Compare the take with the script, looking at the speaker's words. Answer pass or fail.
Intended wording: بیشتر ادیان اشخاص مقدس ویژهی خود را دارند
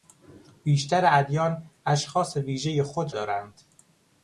fail